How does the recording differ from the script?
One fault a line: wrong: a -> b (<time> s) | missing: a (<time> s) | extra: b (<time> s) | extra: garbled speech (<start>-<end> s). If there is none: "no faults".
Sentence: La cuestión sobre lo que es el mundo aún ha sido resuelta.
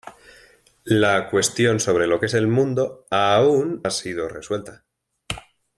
no faults